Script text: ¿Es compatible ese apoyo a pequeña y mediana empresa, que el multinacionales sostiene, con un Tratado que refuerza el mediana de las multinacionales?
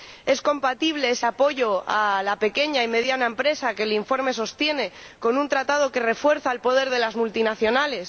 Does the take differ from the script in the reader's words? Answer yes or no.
yes